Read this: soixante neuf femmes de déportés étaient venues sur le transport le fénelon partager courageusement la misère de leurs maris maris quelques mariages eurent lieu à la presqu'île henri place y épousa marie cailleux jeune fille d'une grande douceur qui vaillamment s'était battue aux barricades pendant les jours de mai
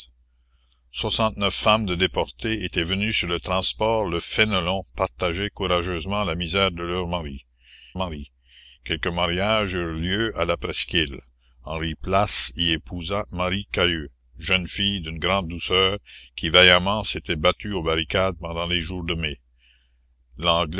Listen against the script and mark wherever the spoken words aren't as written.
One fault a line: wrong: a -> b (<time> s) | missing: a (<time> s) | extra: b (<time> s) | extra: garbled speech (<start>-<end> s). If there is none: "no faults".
no faults